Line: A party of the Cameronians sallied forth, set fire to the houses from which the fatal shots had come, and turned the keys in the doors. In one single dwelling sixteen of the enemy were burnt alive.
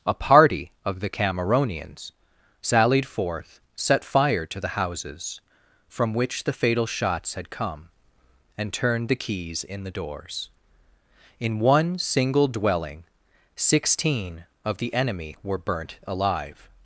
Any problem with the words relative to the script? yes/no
no